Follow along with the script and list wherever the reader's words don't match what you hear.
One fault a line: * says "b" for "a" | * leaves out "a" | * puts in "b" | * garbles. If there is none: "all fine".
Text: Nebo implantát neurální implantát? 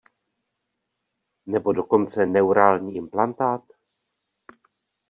* says "dokonce" for "implantát"